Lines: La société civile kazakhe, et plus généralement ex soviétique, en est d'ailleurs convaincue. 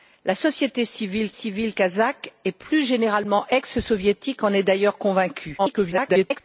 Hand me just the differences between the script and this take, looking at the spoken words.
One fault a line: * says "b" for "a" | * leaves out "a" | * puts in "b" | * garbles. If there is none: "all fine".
* puts in "civile"
* garbles